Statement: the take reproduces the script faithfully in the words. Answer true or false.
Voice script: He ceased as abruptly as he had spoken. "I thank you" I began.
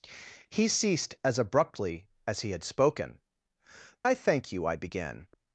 true